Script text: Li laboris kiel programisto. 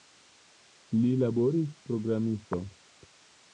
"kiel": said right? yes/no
no